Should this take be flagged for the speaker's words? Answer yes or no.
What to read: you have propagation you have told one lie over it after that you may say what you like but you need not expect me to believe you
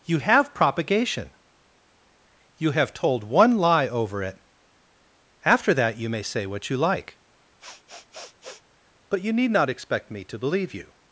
no